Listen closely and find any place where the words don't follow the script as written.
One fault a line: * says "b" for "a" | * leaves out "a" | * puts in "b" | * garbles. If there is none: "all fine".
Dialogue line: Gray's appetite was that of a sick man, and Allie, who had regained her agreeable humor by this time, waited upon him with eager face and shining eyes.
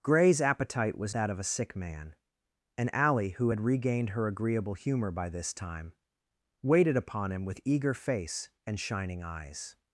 all fine